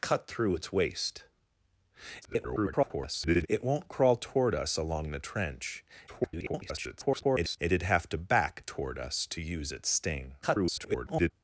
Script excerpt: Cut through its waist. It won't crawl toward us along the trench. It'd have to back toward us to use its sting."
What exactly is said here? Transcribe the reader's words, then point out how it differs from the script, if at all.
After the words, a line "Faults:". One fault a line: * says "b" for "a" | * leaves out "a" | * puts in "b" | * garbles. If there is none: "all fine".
Cut through its waist. [garbled] It won't crawl toward us along the trench. [garbled] It'd have to back toward us to use its sting." [garbled]
Faults:
* garbles
* garbles
* garbles